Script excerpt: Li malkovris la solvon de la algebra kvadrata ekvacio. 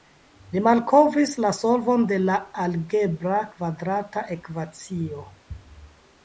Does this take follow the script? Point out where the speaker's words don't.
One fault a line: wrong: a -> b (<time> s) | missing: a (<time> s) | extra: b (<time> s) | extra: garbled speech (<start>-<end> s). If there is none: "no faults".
no faults